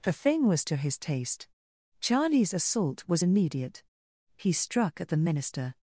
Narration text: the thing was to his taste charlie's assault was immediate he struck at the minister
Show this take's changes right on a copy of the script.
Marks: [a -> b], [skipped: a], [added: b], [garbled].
the thing was to his taste charlie's assault was immediate he struck at the minister